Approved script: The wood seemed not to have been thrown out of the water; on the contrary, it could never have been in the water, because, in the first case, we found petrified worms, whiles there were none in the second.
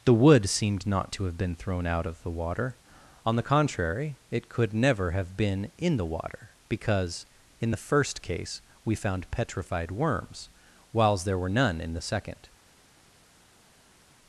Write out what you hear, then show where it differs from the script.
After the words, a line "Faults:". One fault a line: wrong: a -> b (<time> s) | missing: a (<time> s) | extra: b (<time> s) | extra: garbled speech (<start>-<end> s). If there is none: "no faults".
The wood seemed not to have been thrown out of the water; on the contrary, it could never have been in the water, because, in the first case, we found petrified worms, whiles there were none in the second.
Faults:
no faults